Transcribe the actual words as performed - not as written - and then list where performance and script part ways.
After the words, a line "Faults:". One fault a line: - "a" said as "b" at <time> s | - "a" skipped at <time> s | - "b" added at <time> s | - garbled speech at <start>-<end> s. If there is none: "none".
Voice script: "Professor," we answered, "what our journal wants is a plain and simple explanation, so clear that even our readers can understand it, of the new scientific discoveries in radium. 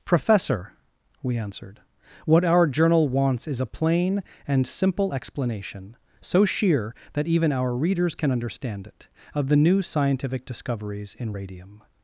"Professor," we answered, "what our journal wants is a plain and simple explanation, so sheer that even our readers can understand it, of the new scientific discoveries in radium.
Faults:
- "clear" said as "sheer" at 6.5 s